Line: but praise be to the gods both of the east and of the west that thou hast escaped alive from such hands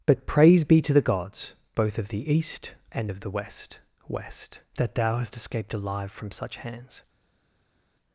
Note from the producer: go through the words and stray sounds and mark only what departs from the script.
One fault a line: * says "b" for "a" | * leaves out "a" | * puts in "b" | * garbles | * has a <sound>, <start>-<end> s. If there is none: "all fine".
* puts in "west"